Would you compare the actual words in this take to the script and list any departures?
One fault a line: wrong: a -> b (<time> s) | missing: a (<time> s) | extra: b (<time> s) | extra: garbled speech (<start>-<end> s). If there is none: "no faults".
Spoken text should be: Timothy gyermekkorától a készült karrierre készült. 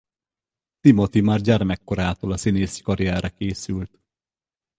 extra: már (1.2 s)
wrong: készült -> színészi (2.3 s)